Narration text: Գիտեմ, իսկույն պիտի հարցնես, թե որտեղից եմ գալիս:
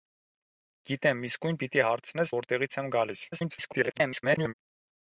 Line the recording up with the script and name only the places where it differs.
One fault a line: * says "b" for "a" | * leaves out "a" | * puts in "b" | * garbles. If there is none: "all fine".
* leaves out "թե"
* garbles